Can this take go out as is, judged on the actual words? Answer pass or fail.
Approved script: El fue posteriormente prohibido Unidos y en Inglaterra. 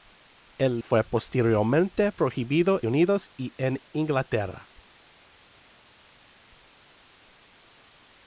pass